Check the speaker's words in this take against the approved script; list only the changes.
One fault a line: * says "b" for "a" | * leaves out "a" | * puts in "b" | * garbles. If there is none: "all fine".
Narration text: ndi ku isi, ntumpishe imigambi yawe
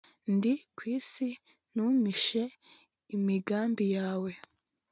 all fine